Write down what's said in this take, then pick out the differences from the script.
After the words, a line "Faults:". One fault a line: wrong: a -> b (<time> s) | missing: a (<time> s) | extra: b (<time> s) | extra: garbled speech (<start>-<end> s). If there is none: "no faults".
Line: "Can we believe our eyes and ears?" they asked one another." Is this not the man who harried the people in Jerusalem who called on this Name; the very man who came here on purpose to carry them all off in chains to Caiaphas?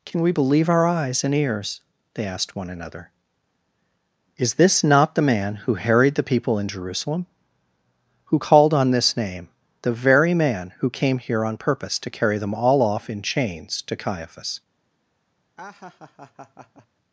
"Can we believe our eyes and ears?" they asked one another." Is this not the man who harried the people in Jerusalem who called on this Name; the very man who came here on purpose to carry them all off in chains to Caiaphas?
Faults:
no faults